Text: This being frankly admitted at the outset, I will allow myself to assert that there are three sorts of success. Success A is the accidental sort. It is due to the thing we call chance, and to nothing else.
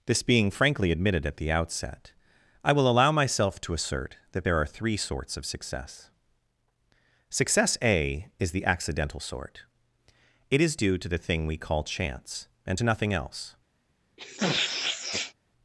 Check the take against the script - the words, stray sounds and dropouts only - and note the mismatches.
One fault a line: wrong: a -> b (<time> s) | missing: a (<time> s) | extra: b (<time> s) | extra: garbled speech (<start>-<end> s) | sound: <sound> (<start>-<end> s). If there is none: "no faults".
sound: sniff (14.2-15.3 s)